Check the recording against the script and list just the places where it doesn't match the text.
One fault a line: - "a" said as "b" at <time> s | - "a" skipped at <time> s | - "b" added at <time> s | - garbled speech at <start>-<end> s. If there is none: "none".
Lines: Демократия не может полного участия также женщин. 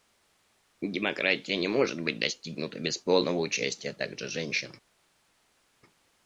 - "быть достигнута без" added at 2.0 s